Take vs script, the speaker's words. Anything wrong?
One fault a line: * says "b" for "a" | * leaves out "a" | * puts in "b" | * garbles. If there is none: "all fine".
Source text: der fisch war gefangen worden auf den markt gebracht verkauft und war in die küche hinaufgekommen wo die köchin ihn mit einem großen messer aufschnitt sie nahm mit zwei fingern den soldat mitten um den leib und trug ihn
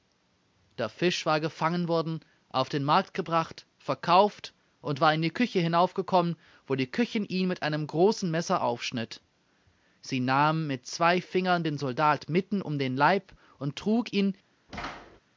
all fine